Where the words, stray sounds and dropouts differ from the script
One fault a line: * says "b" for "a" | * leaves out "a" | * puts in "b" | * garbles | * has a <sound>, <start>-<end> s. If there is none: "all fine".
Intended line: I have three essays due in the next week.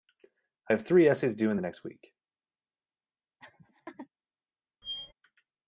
* has a laugh, 3.4-4.1 s
* has a squeak, 4.8-5.1 s